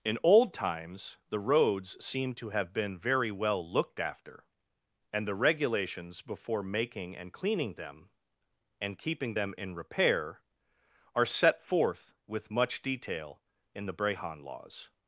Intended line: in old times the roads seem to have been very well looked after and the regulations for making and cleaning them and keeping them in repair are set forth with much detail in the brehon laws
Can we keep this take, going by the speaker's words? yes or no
no